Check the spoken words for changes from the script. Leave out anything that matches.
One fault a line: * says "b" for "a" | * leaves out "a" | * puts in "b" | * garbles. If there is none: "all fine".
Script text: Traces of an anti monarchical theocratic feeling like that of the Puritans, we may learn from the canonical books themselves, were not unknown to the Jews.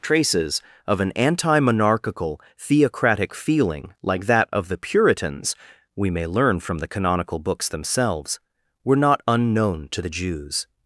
all fine